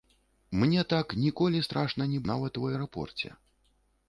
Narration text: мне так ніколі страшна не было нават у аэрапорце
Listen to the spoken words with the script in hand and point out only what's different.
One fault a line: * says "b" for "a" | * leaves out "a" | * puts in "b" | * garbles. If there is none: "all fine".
* leaves out "было"